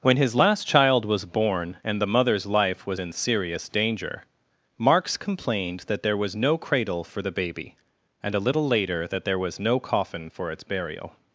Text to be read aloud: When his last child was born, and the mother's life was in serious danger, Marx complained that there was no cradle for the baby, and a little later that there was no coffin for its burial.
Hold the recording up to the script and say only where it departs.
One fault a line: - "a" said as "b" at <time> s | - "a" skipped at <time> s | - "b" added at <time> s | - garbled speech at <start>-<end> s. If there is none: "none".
none